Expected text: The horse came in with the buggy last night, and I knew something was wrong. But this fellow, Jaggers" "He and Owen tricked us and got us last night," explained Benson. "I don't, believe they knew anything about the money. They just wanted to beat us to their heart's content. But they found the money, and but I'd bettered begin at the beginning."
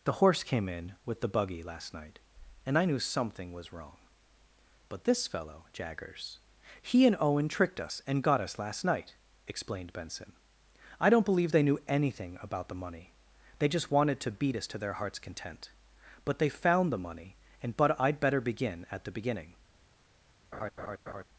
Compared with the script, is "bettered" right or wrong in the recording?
wrong